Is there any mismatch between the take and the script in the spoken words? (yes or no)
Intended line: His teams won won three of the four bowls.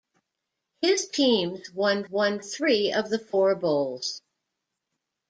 no